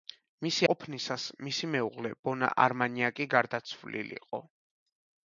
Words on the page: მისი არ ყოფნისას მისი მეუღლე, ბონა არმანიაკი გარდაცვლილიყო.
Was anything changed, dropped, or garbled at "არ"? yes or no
yes